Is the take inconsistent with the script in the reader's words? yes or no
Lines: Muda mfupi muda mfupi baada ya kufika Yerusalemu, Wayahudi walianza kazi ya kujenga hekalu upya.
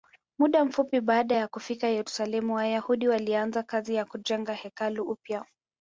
yes